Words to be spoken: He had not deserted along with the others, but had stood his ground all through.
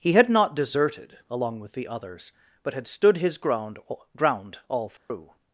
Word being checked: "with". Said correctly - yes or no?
yes